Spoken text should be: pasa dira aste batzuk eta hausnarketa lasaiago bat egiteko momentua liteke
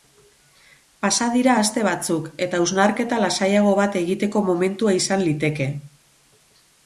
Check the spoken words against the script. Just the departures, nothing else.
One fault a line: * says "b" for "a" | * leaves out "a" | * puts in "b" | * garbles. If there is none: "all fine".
* puts in "izan"